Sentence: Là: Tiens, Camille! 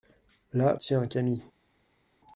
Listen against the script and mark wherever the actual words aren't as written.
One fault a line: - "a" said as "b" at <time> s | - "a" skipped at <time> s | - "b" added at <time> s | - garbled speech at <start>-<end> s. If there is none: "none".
none